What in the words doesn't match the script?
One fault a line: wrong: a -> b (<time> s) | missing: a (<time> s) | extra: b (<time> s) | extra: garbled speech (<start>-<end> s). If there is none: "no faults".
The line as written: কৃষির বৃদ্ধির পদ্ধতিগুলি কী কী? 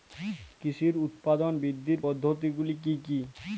extra: উৎপাদন (1.0 s)